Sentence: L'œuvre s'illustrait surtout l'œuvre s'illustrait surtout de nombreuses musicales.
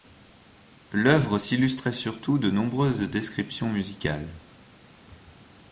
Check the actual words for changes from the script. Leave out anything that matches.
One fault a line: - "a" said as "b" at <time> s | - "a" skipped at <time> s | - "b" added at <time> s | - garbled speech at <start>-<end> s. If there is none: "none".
- "l'œuvre s'illustrait surtout" skipped at 2.4 s
- "descriptions" added at 3.1 s